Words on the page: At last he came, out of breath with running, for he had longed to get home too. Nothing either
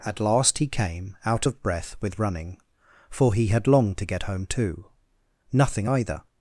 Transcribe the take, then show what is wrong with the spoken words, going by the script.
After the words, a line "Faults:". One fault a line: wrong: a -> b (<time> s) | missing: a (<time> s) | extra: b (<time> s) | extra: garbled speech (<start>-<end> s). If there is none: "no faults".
At last he came, out of breath with running, for he had longed to get home too. Nothing either
Faults:
no faults